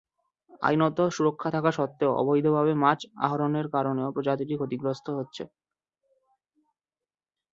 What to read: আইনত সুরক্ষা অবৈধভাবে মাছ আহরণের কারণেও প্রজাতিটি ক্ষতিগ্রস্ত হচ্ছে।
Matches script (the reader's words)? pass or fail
fail